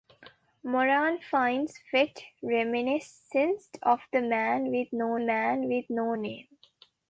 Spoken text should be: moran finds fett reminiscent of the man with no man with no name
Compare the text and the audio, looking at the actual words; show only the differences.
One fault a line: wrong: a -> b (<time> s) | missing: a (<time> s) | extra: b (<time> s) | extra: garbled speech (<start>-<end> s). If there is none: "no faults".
no faults